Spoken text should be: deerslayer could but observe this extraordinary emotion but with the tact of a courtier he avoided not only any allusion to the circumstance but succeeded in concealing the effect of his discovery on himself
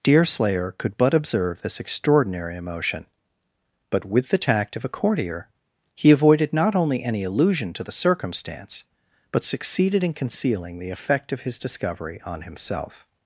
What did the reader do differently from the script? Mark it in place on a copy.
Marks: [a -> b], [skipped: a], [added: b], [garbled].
deerslayer could but observe this extraordinary emotion but with the tact of a courtier he avoided not only any allusion to the circumstance but succeeded in concealing the effect of his discovery on himself